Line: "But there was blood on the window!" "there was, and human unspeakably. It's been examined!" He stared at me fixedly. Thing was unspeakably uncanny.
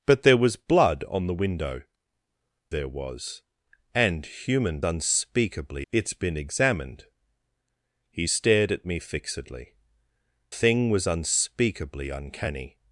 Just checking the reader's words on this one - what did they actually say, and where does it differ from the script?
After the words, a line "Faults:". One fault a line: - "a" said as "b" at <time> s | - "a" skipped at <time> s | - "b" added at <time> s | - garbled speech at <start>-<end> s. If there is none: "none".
"But there was blood on the window!" "there was, and human unspeakably. It's been examined!" He stared at me fixedly. Thing was unspeakably uncanny.
Faults:
none